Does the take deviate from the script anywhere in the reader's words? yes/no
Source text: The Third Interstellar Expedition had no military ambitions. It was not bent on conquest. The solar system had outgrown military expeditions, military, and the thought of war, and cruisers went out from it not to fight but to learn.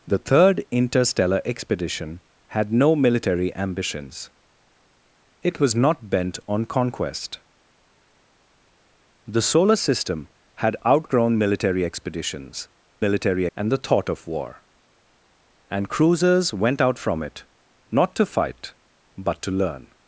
no